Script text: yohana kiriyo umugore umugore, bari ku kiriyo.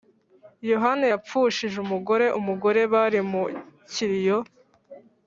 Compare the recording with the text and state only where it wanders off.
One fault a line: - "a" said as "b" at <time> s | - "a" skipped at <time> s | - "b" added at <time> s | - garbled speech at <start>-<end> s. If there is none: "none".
- "kiriyo" said as "yapfushije" at 1.1 s
- "ku" said as "mu" at 3.3 s